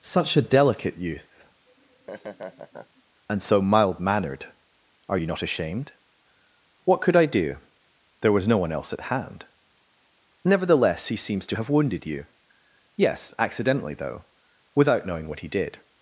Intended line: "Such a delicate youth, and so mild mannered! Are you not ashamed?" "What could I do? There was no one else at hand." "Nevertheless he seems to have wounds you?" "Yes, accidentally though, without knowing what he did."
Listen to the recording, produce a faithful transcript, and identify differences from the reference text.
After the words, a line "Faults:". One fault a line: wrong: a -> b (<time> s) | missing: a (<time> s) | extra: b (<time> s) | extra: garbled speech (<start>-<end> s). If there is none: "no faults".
"Such a delicate youth, and so mild mannered! Are you not ashamed?" "What could I do? There was no one else at hand." "Nevertheless he seems to have wounded you?" "Yes, accidentally though, without knowing what he did."
Faults:
wrong: wounds -> wounded (11.7 s)